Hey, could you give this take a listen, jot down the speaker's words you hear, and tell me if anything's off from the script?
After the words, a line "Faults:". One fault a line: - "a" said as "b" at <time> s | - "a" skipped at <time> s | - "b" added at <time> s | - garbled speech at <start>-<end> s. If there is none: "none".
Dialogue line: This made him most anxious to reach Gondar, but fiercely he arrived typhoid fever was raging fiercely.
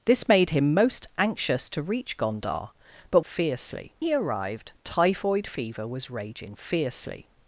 This made him most anxious to reach Gondar, but fiercely he arrived typhoid fever was raging fiercely.
Faults:
none